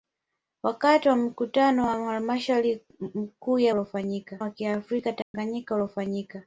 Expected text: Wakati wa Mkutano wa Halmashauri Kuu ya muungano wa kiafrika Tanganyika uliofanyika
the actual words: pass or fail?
fail